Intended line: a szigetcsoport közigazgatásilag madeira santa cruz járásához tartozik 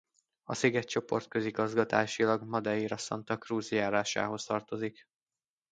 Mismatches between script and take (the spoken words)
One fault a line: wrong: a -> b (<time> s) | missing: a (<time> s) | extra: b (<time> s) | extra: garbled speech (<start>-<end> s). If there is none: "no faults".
no faults